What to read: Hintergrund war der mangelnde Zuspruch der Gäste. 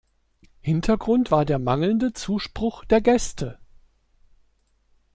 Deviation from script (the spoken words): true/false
false